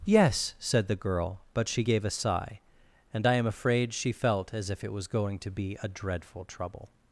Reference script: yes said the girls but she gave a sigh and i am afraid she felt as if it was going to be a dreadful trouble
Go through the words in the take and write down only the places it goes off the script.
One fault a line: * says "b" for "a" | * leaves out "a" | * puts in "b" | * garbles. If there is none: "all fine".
* says "girl" for "girls"